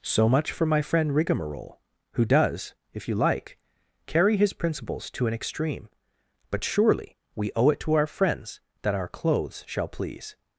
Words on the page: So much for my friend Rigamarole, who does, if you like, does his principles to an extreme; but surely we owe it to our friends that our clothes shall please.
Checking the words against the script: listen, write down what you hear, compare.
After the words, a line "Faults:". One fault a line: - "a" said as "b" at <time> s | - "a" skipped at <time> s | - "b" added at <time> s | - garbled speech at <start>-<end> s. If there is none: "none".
So much for my friend Rigamarole, who does, if you like, carry his principles to an extreme; but surely we owe it to our friends that our clothes shall please.
Faults:
- "does" said as "carry" at 4.1 s